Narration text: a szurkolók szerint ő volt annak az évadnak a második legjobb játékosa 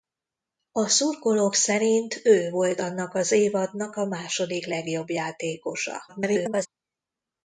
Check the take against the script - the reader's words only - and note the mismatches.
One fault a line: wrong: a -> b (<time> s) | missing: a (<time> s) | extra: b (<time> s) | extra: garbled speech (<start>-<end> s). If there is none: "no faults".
extra: garbled speech (6.1-6.7 s)